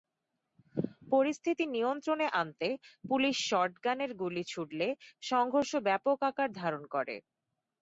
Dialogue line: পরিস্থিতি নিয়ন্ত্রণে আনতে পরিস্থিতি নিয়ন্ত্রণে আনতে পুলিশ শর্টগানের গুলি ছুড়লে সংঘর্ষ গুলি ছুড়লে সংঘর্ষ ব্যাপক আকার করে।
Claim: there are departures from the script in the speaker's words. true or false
true